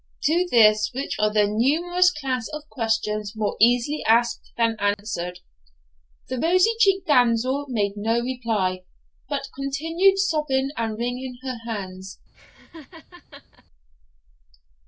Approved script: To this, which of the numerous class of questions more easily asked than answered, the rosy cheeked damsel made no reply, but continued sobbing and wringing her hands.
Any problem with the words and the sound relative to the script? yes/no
yes